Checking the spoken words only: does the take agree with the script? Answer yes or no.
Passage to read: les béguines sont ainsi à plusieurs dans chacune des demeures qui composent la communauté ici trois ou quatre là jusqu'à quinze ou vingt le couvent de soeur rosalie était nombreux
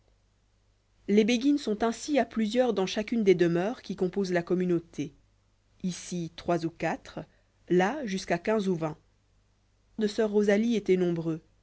no